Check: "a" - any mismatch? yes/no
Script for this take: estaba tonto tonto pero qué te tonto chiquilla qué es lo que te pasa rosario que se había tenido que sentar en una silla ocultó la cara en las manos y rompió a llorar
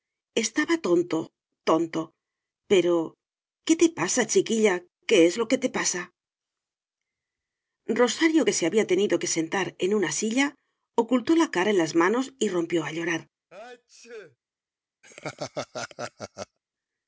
no